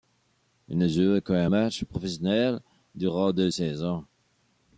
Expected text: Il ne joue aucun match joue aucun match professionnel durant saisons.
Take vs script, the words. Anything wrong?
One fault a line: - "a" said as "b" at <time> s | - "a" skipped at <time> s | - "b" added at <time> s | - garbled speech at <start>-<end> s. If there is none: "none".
- "joue aucun match" skipped at 1.8 s
- "deux" added at 3.3 s